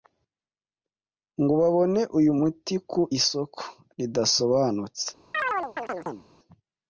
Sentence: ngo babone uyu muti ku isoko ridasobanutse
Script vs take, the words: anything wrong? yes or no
no